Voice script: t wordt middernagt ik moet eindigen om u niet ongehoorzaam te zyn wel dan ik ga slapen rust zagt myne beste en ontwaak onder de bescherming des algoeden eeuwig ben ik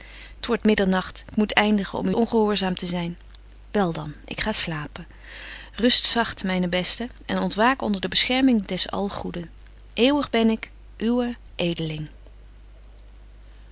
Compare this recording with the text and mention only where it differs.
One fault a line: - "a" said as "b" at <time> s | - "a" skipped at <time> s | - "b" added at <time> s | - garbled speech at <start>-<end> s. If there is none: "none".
- "niet" skipped at 2.1 s